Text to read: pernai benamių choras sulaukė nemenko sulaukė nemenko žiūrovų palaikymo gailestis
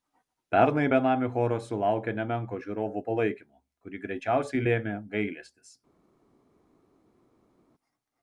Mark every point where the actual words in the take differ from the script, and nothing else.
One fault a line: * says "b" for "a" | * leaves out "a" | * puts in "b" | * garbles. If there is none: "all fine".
* says "žiūrovų palaikymo kurį greičiausiai lėmė" for "sulaukė nemenko žiūrovų palaikymo"